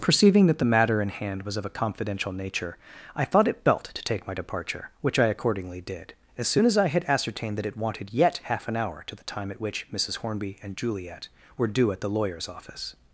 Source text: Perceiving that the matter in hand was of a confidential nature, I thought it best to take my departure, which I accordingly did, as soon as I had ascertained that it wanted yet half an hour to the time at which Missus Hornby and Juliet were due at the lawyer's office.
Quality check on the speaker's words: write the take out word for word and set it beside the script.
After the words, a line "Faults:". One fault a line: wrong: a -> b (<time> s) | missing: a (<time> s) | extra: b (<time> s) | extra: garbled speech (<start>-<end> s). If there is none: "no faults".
Perceiving that the matter in hand was of a confidential nature, I thought it belt to take my departure, which I accordingly did, as soon as I had ascertained that it wanted yet half an hour to the time at which Missus Hornby and Juliet were due at the lawyer's office.
Faults:
wrong: best -> belt (3.6 s)